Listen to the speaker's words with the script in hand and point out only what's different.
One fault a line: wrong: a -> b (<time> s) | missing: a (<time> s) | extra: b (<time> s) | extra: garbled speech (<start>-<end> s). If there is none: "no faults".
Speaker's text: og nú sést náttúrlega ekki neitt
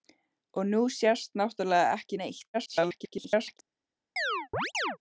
extra: garbled speech (2.5-3.6 s)